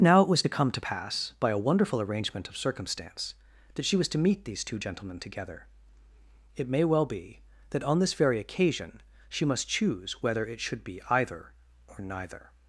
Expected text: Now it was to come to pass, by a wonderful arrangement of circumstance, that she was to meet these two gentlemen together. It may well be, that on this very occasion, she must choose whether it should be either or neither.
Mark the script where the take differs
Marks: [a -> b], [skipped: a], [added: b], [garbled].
Now it was to come to pass, by a wonderful arrangement of circumstance, that she was to meet these two gentlemen together. It may well be, that on this very occasion, she must choose whether it should be either or neither.